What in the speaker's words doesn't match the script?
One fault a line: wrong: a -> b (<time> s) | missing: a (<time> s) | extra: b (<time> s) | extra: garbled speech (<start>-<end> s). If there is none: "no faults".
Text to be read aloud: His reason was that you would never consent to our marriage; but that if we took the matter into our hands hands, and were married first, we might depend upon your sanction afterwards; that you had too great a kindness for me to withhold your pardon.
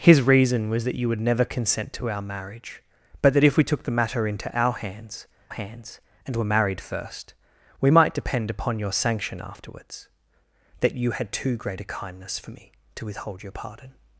no faults